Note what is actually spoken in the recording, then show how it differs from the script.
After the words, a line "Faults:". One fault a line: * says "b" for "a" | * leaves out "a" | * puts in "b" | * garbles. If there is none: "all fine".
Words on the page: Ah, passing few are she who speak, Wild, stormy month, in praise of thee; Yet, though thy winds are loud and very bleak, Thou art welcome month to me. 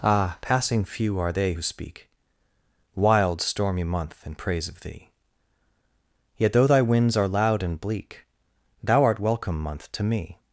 Ah, passing few are they who speak, Wild, stormy month, in praise of thee; Yet, though thy winds are loud and bleak, Thou art welcome month to me.
Faults:
* says "they" for "she"
* leaves out "very"